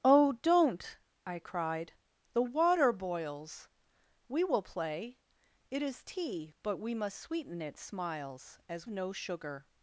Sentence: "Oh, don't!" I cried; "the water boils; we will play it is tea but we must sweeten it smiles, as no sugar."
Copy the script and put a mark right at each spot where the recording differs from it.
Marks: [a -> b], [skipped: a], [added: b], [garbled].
"Oh, don't!" I cried; "the water boils; we will play it is tea but we must sweeten it smiles, as no sugar."